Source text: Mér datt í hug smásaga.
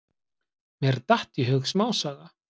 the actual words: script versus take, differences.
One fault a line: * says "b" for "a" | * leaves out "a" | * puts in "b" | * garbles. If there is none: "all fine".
all fine